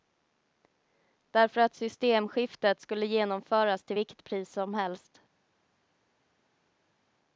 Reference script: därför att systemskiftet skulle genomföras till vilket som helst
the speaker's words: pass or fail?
fail